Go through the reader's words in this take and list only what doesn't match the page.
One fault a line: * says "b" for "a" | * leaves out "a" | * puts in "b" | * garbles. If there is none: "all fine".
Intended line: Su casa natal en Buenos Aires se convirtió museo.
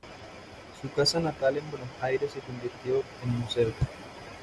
* puts in "en"